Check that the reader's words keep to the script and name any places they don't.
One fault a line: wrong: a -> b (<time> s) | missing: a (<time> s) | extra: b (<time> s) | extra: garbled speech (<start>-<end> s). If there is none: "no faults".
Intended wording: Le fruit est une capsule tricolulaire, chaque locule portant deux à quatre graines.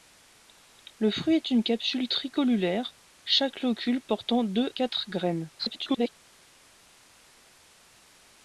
missing: à (4.7 s)
extra: garbled speech (5.6-6.1 s)